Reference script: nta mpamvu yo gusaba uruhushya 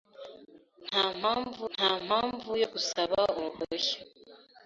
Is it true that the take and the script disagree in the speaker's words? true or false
true